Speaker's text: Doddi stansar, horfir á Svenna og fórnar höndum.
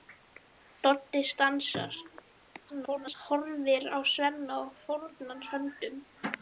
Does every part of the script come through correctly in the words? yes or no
no